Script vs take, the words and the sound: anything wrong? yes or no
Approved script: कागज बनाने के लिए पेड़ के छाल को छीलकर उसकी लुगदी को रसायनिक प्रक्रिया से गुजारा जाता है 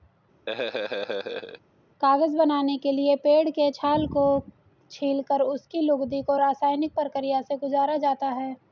yes